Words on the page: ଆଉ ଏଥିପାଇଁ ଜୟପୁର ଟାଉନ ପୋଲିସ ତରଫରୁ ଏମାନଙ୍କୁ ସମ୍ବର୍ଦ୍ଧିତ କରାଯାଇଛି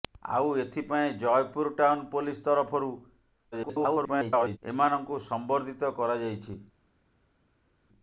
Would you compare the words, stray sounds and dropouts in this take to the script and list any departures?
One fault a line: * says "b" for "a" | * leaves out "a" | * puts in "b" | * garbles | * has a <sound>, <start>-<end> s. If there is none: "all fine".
* garbles